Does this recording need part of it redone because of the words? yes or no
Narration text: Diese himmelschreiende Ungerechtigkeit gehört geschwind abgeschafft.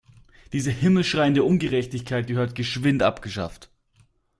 no